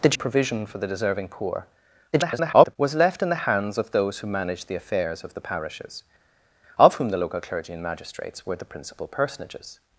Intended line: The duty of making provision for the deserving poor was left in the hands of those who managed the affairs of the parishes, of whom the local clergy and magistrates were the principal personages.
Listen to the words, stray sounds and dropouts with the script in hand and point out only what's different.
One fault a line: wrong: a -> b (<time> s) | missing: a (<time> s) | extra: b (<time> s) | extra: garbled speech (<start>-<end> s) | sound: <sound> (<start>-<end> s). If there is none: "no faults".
missing: duty of making (0.2 s)
extra: garbled speech (2.1-2.8 s)